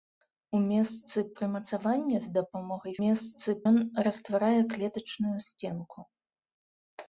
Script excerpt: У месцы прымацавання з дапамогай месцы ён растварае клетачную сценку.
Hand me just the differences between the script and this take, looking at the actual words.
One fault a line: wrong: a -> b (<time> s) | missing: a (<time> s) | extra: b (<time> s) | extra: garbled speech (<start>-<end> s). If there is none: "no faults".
no faults